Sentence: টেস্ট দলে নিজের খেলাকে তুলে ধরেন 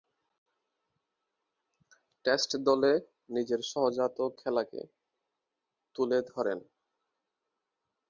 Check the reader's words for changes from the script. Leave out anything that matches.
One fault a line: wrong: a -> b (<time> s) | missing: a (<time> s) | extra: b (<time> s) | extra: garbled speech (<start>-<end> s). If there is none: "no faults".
extra: সহজাত (3.7 s)